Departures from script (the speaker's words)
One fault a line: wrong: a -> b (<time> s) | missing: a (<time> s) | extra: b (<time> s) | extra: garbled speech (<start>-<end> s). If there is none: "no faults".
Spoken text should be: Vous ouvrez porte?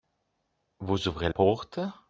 no faults